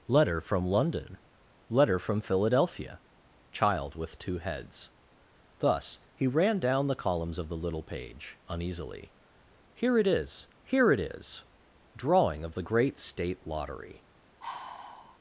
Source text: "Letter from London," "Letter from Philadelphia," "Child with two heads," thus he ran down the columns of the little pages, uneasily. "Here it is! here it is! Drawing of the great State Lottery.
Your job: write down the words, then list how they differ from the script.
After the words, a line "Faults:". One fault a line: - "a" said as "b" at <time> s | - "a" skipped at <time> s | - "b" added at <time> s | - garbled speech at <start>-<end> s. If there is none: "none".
"Letter from London," "Letter from Philadelphia," "Child with two heads," thus he ran down the columns of the little page, uneasily. "Here it is! here it is! Drawing of the great State Lottery.
Faults:
- "pages" said as "page" at 7.8 s